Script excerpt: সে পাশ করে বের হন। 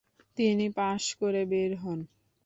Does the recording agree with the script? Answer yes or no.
no